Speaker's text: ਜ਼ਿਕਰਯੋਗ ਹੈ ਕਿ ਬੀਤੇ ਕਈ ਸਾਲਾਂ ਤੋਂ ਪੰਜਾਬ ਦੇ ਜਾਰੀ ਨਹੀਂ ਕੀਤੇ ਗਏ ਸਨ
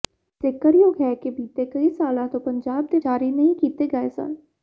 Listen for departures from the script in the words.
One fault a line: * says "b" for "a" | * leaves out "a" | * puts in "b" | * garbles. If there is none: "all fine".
all fine